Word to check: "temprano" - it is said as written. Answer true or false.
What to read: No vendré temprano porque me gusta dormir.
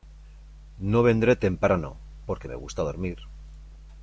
true